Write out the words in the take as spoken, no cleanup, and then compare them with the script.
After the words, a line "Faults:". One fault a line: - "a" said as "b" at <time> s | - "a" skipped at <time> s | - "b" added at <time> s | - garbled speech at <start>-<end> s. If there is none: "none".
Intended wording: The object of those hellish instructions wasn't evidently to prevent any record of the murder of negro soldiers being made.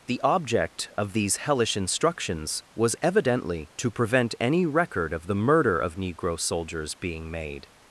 The object of these hellish instructions was evidently to prevent any record of the murder of negro soldiers being made.
Faults:
- "those" said as "these" at 1.1 s
- "wasn't" said as "was" at 2.7 s